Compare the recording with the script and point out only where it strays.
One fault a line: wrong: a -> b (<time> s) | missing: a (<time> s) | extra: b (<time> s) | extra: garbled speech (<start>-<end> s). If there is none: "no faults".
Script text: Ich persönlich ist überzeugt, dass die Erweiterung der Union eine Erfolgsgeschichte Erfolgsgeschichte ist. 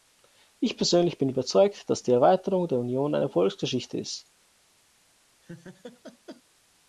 wrong: ist -> bin (1.2 s)
missing: Erfolgsgeschichte (4.0 s)